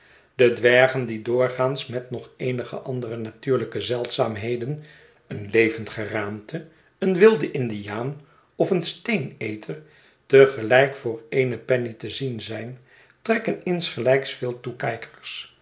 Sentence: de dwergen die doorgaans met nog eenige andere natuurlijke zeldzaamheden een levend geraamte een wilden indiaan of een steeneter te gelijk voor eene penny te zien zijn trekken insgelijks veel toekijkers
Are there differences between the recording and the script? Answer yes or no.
no